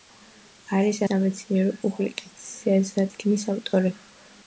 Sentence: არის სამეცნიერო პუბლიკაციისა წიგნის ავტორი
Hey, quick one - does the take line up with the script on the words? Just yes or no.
yes